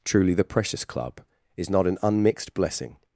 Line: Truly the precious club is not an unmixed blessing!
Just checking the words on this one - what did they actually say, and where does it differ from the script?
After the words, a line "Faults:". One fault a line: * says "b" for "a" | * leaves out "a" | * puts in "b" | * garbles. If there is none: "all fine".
Truly the precious club is not an unmixed blessing!
Faults:
all fine